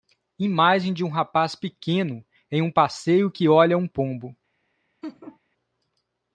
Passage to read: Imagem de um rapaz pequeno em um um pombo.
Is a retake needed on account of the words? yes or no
yes